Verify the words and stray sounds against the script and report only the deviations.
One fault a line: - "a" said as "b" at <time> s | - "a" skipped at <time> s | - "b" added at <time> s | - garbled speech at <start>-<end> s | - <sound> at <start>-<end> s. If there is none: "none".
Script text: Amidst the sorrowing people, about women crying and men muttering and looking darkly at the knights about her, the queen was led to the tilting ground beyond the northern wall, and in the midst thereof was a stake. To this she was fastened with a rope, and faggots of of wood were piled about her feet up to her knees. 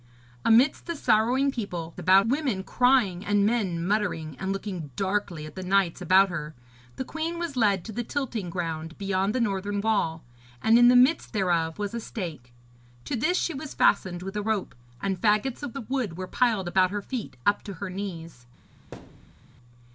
- thud at 18.9-19.4 s